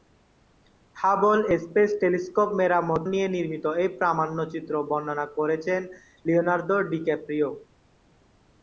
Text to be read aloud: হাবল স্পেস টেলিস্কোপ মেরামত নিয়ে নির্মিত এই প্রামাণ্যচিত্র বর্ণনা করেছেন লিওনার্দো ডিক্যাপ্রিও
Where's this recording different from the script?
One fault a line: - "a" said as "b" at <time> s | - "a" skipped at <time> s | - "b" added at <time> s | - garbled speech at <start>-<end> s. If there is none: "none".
none